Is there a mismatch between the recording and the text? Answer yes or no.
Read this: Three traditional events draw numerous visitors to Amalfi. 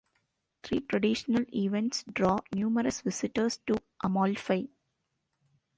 no